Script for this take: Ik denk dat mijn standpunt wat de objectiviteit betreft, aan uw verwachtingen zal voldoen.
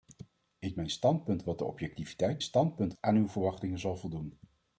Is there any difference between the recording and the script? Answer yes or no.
yes